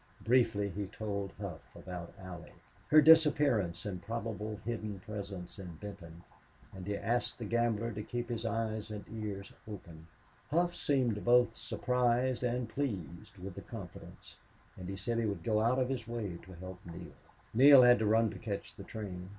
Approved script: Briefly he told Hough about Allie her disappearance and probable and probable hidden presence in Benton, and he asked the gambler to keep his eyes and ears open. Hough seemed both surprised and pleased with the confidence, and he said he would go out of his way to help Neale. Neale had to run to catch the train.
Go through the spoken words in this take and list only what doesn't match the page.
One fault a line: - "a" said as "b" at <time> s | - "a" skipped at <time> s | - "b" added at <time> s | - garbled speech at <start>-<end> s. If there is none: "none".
- "and probable" skipped at 4.6 s